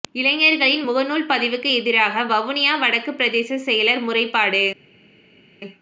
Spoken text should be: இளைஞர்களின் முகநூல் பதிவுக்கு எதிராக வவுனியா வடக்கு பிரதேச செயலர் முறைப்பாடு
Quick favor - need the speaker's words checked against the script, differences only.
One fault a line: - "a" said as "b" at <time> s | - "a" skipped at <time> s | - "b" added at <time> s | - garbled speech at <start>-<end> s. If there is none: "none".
none